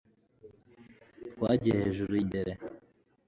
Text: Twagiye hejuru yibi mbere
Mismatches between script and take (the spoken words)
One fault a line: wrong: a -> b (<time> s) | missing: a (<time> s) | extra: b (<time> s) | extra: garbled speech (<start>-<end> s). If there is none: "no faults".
missing: yibi (2.1 s)